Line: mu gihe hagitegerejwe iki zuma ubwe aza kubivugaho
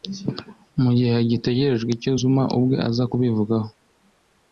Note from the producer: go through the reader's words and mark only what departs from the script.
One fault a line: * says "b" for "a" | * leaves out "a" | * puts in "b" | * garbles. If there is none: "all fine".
* says "icyo" for "iki"